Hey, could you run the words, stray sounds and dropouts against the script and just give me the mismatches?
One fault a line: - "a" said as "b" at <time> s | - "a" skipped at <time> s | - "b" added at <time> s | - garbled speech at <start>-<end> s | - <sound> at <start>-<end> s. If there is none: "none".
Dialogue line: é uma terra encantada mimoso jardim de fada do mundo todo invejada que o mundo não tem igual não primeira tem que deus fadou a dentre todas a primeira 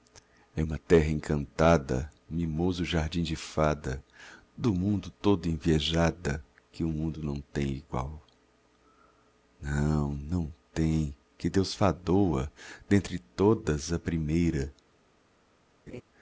- "primeira" said as "não" at 10.1 s
- laugh at 15.9-16.0 s